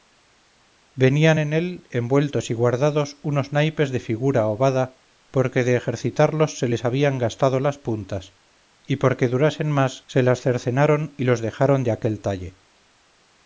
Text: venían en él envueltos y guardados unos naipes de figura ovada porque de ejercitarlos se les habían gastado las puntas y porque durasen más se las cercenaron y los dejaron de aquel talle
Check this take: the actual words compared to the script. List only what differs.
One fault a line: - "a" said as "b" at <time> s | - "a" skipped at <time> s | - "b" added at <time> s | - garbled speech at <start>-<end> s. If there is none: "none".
none